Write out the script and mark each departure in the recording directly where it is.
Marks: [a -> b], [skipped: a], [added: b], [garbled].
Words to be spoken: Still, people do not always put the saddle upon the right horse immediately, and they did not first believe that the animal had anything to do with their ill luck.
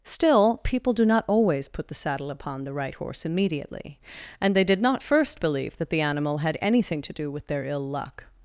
Still, people do not always put the saddle upon the right horse immediately, and they did not first believe that the animal had anything to do with their ill luck.